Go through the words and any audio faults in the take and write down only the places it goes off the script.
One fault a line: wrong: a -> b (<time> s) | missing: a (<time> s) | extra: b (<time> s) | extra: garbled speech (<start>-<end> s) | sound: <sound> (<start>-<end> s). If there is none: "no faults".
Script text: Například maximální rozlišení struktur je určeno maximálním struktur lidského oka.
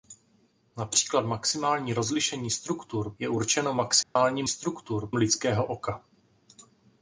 sound: dropout (4.0-4.2 s)